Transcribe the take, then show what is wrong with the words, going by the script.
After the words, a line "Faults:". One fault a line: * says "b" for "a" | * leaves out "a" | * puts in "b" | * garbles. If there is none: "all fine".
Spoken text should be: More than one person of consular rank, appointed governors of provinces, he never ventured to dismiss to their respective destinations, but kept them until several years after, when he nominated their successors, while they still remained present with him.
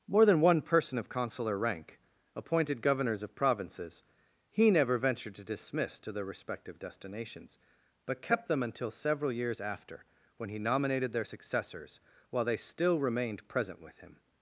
More than one person of consular rank, appointed governors of provinces, he never ventured to dismiss to their respective destinations, but kept them until several years after, when he nominated their successors, while they still remained present with him.
Faults:
all fine